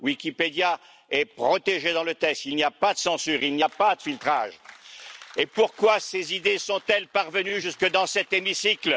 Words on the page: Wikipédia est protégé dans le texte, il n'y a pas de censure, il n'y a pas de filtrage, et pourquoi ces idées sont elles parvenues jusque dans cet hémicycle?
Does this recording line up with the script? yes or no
yes